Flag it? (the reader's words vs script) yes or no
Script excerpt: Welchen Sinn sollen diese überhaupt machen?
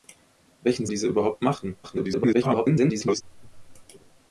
yes